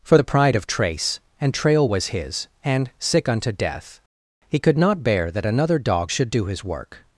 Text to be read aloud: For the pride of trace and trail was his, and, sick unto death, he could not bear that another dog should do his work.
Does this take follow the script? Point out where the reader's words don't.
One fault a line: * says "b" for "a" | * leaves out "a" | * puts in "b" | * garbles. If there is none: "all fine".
all fine